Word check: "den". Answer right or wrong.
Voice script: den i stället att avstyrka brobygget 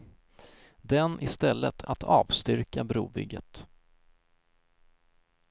right